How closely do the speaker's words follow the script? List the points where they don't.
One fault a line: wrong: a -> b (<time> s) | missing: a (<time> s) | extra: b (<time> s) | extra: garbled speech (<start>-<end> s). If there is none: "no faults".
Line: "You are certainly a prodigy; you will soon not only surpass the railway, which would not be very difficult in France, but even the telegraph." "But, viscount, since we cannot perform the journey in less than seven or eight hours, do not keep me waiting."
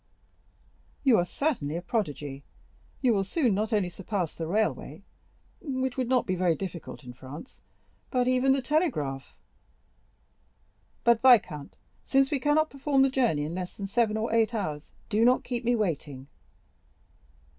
no faults